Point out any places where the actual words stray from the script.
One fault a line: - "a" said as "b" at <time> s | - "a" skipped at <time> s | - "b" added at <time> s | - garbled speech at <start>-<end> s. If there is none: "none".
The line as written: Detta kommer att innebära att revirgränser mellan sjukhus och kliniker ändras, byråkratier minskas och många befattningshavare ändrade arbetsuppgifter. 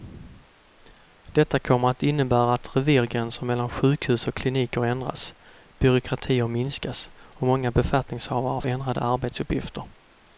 none